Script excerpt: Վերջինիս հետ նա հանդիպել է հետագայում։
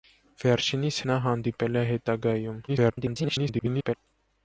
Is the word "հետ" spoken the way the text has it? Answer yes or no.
no